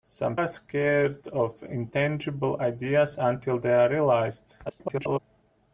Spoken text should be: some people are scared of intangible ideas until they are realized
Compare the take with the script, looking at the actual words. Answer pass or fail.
fail